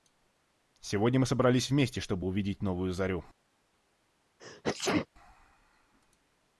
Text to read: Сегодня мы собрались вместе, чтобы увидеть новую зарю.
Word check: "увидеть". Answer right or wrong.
right